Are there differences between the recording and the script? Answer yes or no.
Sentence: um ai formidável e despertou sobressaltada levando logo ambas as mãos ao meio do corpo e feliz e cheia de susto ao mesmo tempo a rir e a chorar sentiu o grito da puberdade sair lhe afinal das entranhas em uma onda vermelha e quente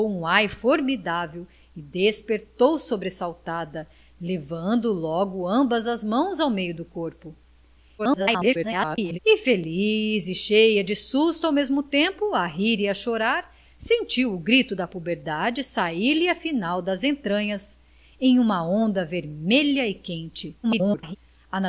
yes